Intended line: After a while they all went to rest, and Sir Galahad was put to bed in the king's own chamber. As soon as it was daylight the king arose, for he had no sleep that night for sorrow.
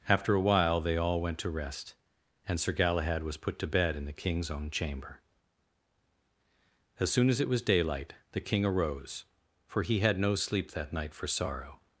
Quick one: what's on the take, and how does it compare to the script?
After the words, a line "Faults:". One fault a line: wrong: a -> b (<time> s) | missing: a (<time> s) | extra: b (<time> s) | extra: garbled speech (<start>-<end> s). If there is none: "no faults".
After a while they all went to rest, and Sir Galahad was put to bed in the king's own chamber. As soon as it was daylight the king arose, for he had no sleep that night for sorrow.
Faults:
no faults